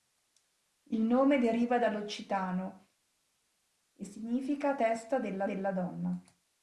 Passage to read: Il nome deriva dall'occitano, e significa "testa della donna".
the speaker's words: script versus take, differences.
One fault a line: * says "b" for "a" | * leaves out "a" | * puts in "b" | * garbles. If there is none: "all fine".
* puts in "della"